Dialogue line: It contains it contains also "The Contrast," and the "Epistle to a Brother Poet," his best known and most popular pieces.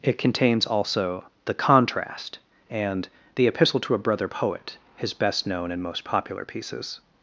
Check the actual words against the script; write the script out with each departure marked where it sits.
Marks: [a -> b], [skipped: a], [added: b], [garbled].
It contains [skipped: it contains] also "The Contrast," and the "Epistle to a Brother Poet," his best known and most popular pieces.